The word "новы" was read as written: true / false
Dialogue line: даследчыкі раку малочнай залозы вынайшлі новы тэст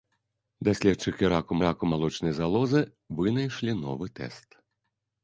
true